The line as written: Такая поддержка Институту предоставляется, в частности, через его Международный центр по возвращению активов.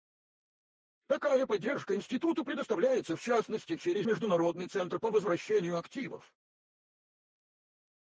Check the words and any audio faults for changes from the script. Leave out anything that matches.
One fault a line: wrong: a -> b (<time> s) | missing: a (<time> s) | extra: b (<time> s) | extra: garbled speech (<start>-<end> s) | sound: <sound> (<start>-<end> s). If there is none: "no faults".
missing: его (4.1 s)